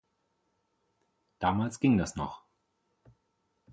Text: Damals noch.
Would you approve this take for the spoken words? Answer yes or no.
no